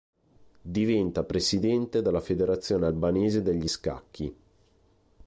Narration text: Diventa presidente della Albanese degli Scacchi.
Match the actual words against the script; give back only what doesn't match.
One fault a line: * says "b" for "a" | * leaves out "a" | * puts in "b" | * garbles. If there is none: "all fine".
* puts in "Federazione"